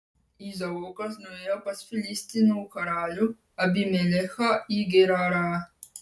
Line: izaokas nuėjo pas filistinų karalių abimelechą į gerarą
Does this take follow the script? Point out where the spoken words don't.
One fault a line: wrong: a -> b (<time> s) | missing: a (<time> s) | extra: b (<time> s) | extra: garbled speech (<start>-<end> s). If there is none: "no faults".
no faults